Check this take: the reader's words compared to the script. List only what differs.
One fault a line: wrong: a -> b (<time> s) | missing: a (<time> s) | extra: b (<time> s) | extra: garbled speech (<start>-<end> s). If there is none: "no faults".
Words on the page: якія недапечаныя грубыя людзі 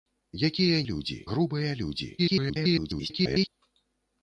wrong: недапечаныя -> людзі (0.9 s)
extra: garbled speech (2.2-3.5 s)